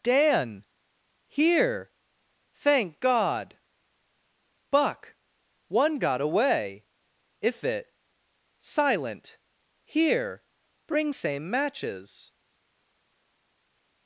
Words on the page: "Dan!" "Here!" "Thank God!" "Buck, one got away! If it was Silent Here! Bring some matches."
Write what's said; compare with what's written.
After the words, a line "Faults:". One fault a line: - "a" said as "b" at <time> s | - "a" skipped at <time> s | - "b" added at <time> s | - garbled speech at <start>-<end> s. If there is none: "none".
"Dan!" "Here!" "Thank God!" "Buck, one got away! If it Silent Here! Bring same matches."
Faults:
- "was" skipped at 7.9 s
- "some" said as "same" at 11.1 s